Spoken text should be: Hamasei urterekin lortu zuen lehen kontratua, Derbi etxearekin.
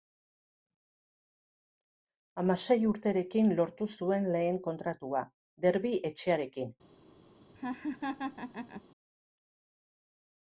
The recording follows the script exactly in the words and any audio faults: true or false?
false